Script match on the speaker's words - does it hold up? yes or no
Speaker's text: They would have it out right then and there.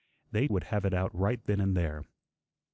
yes